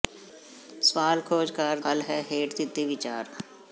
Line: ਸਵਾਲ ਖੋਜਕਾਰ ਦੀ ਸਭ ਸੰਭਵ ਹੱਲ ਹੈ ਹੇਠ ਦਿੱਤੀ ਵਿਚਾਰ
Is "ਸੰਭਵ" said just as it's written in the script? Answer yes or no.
no